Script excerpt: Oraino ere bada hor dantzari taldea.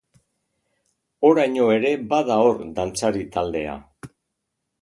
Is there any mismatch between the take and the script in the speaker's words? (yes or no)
no